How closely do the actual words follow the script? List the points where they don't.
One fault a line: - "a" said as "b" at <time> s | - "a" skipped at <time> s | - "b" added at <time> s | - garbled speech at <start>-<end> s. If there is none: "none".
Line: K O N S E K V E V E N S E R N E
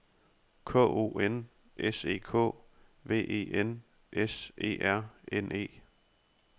- "V E" skipped at 3.5 s